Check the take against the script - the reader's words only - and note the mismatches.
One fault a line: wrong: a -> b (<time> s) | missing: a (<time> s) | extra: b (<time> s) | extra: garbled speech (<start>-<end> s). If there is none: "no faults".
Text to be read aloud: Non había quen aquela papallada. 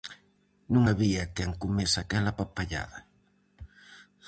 extra: comese (1.6 s)